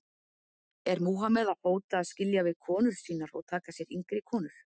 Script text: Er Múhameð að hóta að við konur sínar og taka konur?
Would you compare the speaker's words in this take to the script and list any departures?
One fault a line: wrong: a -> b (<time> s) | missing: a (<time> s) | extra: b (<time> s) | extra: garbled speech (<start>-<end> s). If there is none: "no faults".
extra: skilja (2.1 s)
extra: sér yngri (3.8 s)